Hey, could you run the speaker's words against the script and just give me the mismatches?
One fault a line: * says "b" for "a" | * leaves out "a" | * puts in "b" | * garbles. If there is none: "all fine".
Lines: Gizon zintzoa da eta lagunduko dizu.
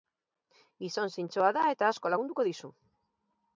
* puts in "asko"